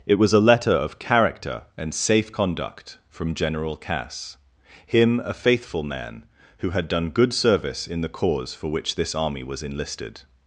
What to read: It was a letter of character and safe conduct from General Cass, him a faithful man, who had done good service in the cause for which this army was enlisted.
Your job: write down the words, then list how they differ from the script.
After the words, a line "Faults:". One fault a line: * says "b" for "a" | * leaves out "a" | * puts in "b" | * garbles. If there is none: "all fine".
It was a letter of character and safe conduct from General Cass, him a faithful man, who had done good service in the cause for which this army was enlisted.
Faults:
all fine